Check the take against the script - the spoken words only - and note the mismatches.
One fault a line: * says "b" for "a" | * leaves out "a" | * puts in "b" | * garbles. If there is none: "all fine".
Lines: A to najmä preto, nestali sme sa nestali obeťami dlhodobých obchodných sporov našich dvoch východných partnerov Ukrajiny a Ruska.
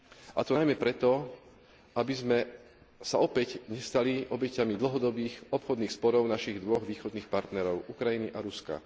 * says "aby" for "nestali"
* puts in "opäť"